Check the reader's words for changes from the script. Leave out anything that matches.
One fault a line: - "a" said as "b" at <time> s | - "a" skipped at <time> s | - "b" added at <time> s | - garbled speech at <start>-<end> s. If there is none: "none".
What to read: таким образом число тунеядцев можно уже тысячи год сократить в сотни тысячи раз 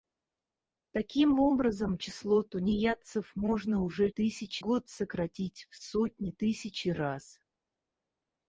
none